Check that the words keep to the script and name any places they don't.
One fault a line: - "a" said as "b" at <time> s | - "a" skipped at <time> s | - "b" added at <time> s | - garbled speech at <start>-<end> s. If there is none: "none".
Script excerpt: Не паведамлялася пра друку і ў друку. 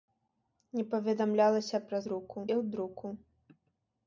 none